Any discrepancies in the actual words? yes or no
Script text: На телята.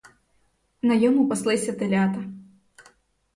yes